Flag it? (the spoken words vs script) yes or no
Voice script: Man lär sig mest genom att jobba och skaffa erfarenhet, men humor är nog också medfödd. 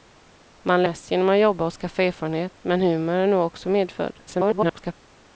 yes